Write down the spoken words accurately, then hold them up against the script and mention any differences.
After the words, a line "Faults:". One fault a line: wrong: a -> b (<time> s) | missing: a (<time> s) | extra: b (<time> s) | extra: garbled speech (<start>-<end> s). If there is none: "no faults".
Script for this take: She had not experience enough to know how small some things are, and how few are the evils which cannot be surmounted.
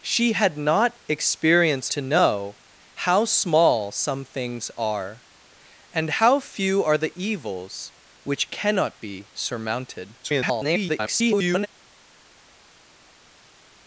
She had not experience to know how small some things are, and how few are the evils which cannot be surmounted. [garbled]
Faults:
missing: enough (1.9 s)
extra: garbled speech (10.2-11.7 s)